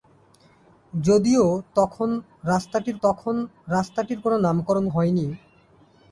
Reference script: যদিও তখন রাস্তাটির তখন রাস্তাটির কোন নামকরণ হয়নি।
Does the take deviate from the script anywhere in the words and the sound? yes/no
no